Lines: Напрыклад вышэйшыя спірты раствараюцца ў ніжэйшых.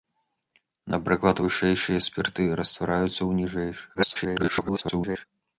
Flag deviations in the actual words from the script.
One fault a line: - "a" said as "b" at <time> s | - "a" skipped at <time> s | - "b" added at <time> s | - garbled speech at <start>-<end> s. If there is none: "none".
- garbled speech at 3.9-5.3 s